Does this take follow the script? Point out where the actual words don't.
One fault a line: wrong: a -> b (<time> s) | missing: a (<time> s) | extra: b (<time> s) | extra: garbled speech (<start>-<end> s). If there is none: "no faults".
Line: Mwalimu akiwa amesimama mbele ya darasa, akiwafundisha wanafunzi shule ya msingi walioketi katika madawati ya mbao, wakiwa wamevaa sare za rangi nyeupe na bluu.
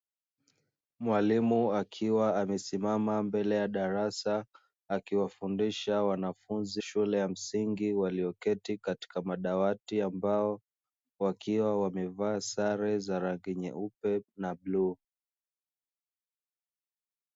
no faults